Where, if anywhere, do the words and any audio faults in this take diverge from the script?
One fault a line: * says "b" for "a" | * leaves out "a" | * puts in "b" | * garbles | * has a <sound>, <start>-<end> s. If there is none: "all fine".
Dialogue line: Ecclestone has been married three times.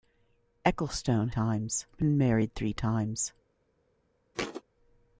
* says "times" for "has"
* has a thud, 4.3-4.6 s